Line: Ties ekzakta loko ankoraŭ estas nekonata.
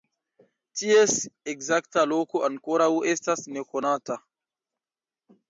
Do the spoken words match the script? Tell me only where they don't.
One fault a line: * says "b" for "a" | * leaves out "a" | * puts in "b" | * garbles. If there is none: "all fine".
all fine